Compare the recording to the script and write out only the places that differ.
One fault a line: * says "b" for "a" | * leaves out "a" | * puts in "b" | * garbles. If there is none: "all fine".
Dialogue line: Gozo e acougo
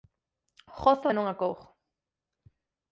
* puts in "non"